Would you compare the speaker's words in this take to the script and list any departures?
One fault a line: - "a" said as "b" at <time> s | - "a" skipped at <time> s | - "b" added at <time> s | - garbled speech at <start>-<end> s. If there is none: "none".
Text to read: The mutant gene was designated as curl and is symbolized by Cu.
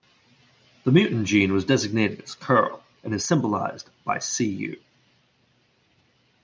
none